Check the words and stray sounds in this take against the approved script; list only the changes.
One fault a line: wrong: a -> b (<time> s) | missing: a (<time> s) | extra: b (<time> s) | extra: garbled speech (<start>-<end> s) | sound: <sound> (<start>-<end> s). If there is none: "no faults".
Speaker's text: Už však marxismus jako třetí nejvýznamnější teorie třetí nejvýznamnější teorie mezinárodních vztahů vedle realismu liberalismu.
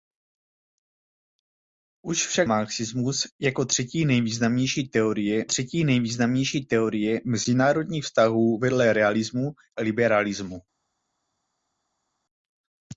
no faults